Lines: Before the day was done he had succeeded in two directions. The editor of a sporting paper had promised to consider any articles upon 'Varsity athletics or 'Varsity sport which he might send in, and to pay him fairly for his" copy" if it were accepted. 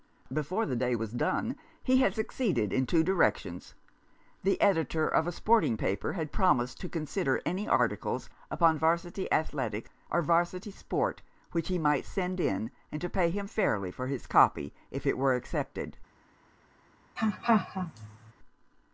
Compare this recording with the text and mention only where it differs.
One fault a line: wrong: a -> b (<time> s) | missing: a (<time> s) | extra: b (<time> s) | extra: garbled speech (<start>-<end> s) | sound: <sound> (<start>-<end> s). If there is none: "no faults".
sound: laugh (17.2-18.3 s)